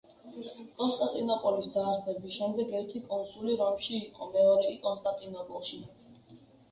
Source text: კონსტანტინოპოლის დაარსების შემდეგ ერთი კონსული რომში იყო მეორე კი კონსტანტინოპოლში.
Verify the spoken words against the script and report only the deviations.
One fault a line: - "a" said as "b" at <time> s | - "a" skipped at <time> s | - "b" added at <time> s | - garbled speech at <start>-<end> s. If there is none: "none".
none